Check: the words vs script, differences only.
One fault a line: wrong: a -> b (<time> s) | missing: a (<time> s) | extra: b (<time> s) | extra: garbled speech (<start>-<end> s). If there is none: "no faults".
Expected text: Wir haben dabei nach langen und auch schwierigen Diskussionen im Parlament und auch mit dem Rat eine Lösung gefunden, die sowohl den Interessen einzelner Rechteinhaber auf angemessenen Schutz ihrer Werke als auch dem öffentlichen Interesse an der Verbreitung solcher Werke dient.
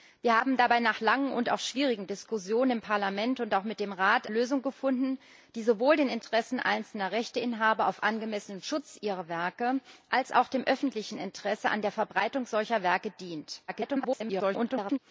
missing: eine (4.3 s)
extra: garbled speech (13.7-15.0 s)